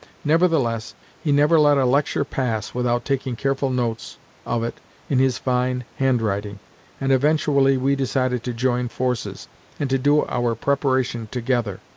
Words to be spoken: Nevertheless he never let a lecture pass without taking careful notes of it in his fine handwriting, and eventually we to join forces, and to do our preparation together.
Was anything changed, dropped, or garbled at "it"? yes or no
no